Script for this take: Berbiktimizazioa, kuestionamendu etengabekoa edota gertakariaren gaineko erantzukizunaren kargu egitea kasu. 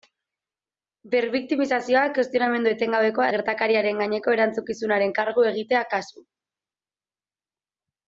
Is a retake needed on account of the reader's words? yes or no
yes